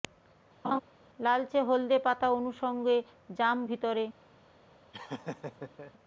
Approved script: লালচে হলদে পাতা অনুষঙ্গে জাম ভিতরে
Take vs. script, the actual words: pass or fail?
pass